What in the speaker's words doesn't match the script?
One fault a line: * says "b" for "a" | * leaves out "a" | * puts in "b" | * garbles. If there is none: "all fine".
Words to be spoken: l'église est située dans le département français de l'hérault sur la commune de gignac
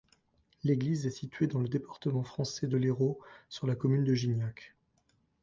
all fine